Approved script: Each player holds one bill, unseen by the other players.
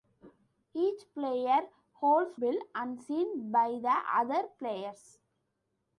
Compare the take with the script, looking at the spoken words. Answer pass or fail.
fail